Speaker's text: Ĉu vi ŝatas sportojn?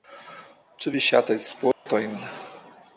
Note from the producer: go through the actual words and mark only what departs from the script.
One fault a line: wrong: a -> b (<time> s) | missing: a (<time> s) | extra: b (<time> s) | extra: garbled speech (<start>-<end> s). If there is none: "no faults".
no faults